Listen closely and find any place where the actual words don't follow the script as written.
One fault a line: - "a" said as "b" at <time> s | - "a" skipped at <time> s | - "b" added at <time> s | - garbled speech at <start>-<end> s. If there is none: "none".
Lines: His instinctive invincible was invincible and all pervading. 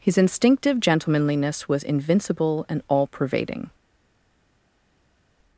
- "invincible" said as "gentlemanliness" at 0.8 s